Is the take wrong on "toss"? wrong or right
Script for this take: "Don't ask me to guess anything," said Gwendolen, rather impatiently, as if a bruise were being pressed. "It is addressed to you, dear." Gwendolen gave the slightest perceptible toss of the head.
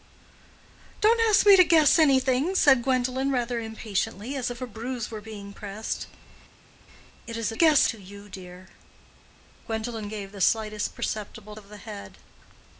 wrong